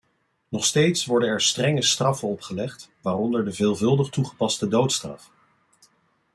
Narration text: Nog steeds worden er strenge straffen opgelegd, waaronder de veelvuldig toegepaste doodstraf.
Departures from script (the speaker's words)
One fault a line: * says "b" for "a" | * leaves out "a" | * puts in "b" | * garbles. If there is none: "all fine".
all fine